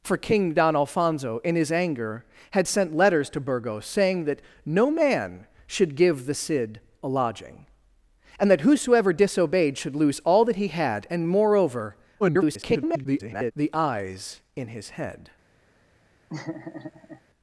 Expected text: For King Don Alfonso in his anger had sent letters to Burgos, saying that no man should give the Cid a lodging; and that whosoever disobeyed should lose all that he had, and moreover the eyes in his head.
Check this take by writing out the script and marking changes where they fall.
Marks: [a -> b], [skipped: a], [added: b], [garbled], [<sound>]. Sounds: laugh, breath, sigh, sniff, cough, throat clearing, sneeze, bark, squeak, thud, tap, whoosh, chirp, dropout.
For King Don Alfonso in his anger had sent letters to Burgos, saying that no man should give the Cid a lodging; and that whosoever disobeyed should lose all that he had, and moreover [garbled] the eyes in his head. [laugh]